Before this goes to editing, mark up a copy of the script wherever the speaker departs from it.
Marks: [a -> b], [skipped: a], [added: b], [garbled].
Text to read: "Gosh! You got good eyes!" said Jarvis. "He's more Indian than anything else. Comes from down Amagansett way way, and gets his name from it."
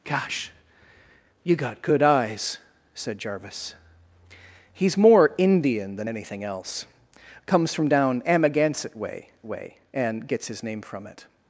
"Gosh! You got good eyes!" said Jarvis. "He's more Indian than anything else. Comes from down Amagansett way way, and gets his name from it."